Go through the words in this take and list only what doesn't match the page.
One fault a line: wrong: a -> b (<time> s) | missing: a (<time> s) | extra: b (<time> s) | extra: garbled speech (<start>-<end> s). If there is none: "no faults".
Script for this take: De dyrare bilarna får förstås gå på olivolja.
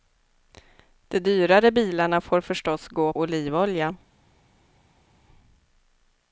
missing: på (3.1 s)